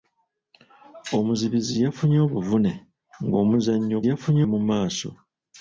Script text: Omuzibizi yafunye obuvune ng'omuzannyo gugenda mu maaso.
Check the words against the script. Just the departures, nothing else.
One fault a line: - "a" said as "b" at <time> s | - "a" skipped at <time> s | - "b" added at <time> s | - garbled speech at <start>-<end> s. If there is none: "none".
- "gugenda" said as "yafunye" at 4.1 s